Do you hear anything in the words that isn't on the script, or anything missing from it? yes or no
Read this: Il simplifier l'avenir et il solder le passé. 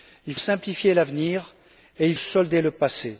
no